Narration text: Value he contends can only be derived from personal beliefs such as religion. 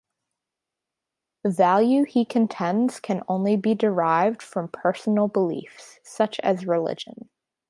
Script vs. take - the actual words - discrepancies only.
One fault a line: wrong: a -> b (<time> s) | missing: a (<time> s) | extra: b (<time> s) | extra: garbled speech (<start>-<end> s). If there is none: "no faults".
no faults